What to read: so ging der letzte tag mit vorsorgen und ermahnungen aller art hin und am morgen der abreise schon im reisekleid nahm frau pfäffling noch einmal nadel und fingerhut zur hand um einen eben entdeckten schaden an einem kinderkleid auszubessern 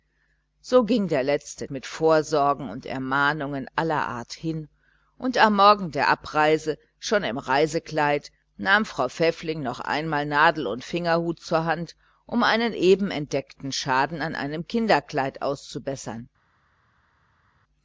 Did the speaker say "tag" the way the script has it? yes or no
no